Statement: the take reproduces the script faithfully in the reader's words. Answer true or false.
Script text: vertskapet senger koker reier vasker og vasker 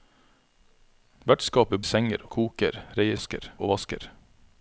true